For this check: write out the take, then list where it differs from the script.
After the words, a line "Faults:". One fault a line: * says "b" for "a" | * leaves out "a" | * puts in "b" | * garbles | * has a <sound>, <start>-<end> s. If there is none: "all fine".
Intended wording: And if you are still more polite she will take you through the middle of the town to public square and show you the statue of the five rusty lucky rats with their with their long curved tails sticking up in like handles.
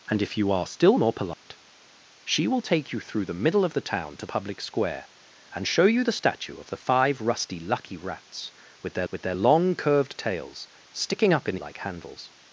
And if you are still more polite she will take you through the middle of the town to public square and show you the statue of the five rusty lucky rats with their with their long curved tails sticking up in like handles.
Faults:
* has a dropout, 1.3-1.5 s